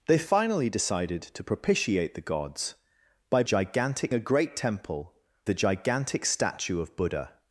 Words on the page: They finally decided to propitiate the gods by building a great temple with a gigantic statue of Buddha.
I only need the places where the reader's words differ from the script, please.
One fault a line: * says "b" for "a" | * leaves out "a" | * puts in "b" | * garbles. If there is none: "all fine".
* says "gigantic" for "building"
* leaves out "with"